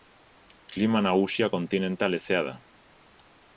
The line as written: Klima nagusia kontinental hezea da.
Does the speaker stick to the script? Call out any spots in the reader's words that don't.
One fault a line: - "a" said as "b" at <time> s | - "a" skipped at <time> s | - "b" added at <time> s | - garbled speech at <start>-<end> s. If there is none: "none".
none